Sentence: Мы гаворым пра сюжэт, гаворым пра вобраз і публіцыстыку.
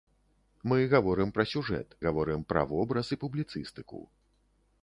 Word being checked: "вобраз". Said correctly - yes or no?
yes